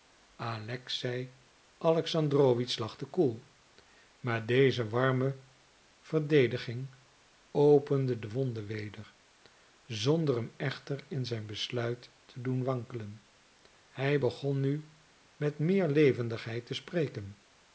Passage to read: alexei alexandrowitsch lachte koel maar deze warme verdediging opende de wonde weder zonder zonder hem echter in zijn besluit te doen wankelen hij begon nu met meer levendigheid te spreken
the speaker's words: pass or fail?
fail